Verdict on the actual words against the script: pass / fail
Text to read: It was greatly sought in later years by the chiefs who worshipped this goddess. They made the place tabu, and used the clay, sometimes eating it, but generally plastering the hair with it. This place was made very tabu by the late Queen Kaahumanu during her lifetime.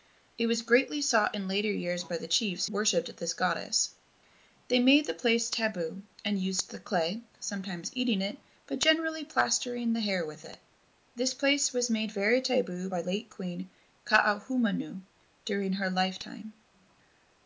fail